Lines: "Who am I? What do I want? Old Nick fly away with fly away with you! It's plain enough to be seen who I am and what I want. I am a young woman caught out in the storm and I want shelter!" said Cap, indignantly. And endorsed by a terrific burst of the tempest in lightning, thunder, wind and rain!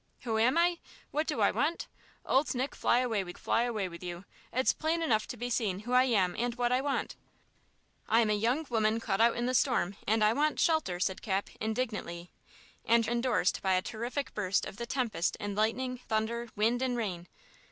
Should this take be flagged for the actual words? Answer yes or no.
no